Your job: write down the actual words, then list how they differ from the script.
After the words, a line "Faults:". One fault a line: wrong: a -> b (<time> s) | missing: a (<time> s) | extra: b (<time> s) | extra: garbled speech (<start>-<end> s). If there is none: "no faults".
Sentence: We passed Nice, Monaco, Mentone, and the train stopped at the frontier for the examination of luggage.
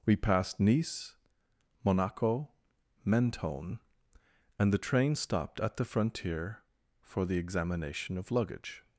We passed Nice, Monaco, Mentone, and the train stopped at the frontier for the examination of luggage.
Faults:
no faults